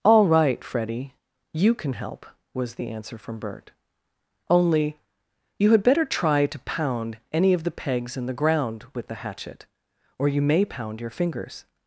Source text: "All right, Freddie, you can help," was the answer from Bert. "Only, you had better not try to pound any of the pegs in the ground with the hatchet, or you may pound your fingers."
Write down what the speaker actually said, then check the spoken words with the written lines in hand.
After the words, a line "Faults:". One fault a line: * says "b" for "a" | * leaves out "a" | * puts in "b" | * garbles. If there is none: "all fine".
"All right, Freddie, you can help," was the answer from Bert. "Only, you had better try to pound any of the pegs in the ground with the hatchet, or you may pound your fingers."
Faults:
* leaves out "not"